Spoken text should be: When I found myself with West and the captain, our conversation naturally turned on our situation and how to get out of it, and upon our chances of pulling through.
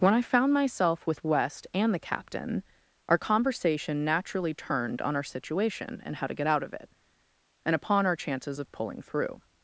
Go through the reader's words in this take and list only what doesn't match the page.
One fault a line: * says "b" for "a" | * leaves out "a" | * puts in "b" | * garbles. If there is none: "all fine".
all fine